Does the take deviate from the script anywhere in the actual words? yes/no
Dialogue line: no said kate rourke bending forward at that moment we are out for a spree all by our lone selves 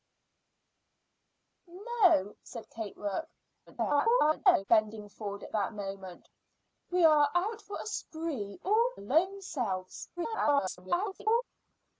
yes